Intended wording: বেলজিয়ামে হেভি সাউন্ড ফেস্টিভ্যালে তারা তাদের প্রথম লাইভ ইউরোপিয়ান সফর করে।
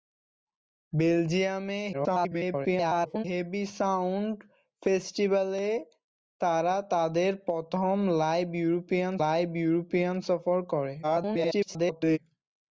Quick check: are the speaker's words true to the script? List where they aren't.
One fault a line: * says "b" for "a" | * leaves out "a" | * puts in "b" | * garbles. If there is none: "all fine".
* garbles
* puts in "লাইভ ইউরোপিয়ান"
* garbles